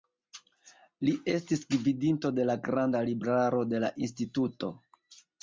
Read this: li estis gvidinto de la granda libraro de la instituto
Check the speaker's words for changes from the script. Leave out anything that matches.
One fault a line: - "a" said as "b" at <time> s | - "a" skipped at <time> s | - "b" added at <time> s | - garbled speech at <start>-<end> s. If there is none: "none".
none